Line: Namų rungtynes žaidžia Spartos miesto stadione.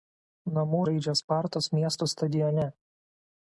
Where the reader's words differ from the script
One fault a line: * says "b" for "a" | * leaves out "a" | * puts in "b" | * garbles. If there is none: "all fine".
* leaves out "rungtynes"